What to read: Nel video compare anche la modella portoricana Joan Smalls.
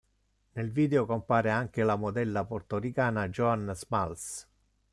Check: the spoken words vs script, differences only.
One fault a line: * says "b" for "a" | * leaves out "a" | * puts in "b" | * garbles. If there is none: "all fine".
all fine